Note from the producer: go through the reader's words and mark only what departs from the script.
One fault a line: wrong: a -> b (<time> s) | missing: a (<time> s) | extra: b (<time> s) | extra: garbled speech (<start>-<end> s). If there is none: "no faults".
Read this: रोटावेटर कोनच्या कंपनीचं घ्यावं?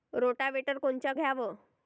missing: कंपनीचं (1.1 s)